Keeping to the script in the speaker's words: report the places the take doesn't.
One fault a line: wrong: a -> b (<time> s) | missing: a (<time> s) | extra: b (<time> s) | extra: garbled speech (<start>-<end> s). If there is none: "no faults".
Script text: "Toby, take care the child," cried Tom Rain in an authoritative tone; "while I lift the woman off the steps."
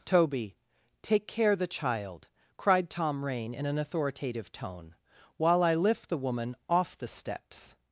no faults